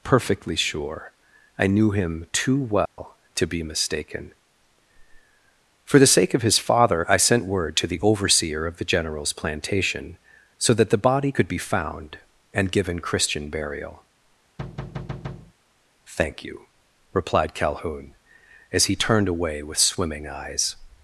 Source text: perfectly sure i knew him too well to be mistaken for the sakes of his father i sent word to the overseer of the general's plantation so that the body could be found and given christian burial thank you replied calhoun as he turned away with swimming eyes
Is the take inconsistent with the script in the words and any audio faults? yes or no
yes